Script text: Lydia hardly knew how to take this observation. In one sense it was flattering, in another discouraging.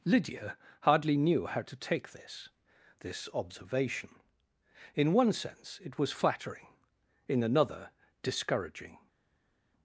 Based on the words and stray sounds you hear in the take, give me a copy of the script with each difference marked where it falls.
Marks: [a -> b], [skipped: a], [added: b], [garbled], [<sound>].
Lydia hardly knew how to take this [added: this] observation. In one sense it was flattering, in another discouraging.